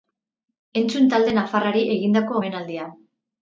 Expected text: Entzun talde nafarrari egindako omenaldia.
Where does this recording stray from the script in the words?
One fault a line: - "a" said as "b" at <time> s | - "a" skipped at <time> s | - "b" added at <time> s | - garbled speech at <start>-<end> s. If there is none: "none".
none